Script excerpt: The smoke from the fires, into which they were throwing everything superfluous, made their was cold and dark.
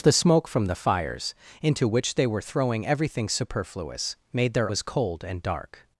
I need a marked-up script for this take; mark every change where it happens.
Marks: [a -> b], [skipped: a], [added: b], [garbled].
The smoke from the fires, into which they were throwing everything superfluous, made their was cold and dark.